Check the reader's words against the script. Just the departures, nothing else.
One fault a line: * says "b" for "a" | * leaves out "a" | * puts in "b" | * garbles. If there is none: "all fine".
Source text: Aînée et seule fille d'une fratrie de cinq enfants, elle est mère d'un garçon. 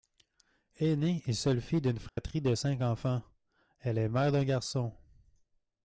all fine